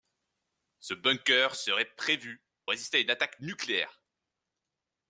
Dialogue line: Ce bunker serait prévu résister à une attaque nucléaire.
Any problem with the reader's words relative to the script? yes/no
no